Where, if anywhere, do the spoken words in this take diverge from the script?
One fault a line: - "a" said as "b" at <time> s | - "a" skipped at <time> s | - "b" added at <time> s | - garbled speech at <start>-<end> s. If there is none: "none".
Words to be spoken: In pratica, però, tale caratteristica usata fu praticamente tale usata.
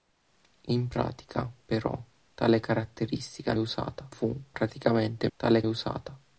none